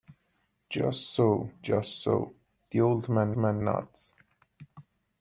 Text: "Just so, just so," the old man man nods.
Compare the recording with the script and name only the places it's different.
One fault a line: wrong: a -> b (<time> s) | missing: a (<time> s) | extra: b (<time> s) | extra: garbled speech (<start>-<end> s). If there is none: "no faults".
no faults